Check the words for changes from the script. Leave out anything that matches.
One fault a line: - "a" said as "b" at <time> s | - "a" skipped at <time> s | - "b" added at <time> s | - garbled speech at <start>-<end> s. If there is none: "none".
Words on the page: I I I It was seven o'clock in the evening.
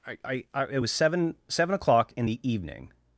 - "seven" added at 1.5 s